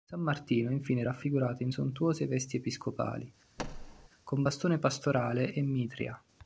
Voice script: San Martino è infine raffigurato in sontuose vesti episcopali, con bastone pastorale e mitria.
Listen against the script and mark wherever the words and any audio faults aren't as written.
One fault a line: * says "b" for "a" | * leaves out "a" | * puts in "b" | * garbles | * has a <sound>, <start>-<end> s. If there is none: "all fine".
* has a thud, 3.6-4.1 s